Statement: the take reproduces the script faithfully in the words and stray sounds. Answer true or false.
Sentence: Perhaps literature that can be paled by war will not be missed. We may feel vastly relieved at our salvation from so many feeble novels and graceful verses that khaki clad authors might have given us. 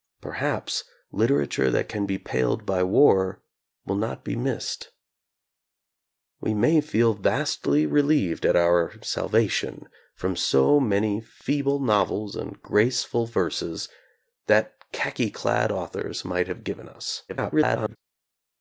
false